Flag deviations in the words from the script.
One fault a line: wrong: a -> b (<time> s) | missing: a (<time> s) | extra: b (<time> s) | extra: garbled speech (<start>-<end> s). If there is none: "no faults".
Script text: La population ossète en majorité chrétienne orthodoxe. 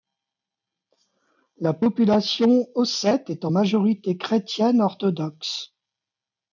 extra: est (3.3 s)